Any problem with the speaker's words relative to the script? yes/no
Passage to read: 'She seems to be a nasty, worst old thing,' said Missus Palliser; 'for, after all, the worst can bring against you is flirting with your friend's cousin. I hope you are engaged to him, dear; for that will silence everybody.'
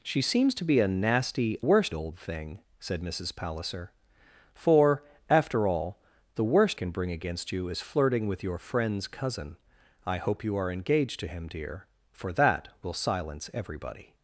no